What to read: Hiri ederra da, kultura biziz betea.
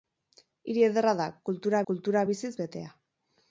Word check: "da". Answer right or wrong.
right